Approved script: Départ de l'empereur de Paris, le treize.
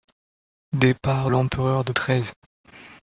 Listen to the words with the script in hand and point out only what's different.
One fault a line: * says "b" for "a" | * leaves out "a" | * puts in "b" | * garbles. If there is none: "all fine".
* leaves out "de"
* leaves out "Paris le"